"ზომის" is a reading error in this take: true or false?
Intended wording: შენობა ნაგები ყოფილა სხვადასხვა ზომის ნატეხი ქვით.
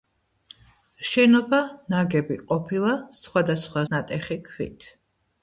true